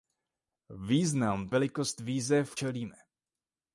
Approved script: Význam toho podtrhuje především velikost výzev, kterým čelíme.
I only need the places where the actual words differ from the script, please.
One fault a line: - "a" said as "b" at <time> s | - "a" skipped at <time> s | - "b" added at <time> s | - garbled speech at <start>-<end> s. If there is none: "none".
- "toho podtrhuje především" skipped at 1.5 s
- "kterým" skipped at 2.6 s